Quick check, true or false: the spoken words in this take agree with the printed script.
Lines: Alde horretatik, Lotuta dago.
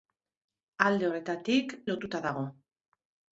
true